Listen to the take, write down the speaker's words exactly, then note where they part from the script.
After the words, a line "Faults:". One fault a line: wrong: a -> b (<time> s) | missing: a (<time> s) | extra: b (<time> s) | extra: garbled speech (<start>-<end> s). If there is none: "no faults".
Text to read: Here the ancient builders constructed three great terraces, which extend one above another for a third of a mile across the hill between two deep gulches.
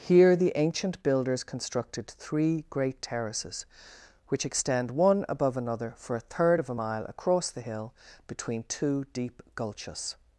Here the ancient builders constructed three great terraces, which extend one above another for a third of a mile across the hill between two deep gulches.
Faults:
no faults